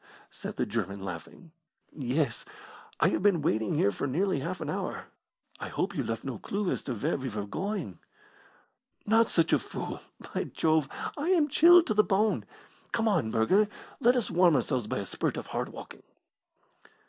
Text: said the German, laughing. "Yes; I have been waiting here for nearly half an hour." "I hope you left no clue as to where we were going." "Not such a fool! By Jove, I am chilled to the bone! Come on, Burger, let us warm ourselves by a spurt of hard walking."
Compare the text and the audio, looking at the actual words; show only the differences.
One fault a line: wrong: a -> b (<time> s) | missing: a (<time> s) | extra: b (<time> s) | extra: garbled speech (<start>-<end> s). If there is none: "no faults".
no faults